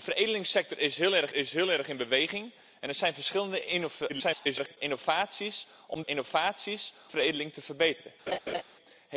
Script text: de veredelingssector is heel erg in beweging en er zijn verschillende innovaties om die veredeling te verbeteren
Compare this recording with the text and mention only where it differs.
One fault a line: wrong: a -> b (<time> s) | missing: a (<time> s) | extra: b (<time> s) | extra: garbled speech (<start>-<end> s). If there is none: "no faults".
extra: is heel erg (1.3 s)
extra: garbled speech (4.1-4.8 s)
wrong: die -> innovaties (6.1 s)